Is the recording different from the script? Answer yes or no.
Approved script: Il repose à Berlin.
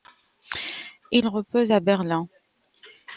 no